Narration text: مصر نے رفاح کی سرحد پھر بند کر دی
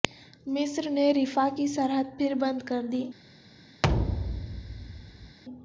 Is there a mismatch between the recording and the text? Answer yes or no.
no